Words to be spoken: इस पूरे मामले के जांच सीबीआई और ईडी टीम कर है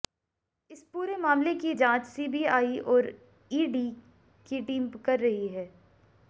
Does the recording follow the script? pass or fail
fail